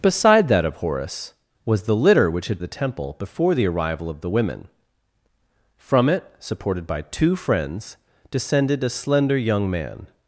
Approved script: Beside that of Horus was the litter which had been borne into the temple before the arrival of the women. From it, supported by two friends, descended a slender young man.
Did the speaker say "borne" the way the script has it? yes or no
no